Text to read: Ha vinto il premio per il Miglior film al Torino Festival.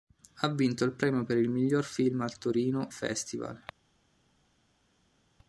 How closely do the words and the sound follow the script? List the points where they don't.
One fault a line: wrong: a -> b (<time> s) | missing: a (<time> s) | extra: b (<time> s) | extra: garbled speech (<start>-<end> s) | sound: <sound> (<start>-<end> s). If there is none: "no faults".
no faults